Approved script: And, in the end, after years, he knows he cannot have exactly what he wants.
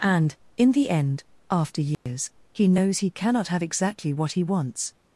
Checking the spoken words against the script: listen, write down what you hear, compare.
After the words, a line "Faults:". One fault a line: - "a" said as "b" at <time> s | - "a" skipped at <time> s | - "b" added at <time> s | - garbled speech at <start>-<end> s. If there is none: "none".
And, in the end, after years, he knows he cannot have exactly what he wants.
Faults:
none